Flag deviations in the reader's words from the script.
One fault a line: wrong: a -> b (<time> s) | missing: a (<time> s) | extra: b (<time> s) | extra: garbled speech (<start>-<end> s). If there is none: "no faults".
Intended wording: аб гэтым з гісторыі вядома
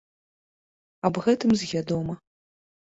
missing: гісторыі (1.7 s)